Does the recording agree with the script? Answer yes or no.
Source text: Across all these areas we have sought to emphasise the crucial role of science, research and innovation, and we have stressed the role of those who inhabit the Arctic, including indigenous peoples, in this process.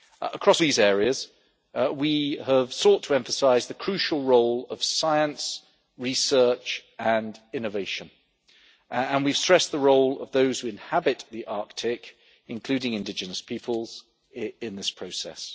no